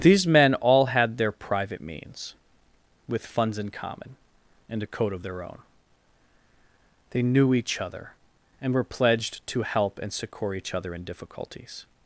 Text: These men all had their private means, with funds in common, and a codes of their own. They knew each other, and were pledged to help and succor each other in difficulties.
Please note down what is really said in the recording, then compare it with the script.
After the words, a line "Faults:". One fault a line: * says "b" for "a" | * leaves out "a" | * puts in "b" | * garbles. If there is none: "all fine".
These men all had their private means, with funds in common, and a code of their own. They knew each other, and were pledged to help and succor each other in difficulties.
Faults:
* says "code" for "codes"